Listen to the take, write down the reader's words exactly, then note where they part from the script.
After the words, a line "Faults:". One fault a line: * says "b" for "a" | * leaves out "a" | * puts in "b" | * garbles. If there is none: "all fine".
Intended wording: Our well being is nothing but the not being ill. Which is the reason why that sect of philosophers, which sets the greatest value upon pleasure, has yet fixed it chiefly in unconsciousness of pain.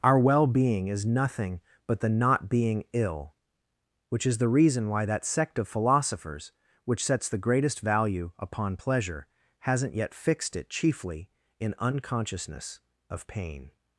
Our well being is nothing but the not being ill. Which is the reason why that sect of philosophers, which sets the greatest value upon pleasure, hasn't yet fixed it chiefly in unconsciousness of pain.
Faults:
* says "hasn't" for "has"